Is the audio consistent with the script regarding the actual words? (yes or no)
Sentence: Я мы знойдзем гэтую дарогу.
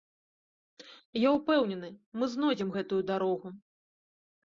no